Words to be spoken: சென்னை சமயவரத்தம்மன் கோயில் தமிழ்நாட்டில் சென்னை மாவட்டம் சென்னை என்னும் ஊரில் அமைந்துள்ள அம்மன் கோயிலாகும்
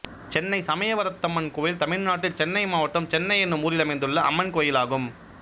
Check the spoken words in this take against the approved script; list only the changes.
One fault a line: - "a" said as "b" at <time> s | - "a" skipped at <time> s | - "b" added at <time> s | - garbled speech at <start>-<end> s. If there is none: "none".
none